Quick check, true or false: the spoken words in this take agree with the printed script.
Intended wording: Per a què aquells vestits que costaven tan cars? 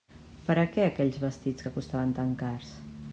true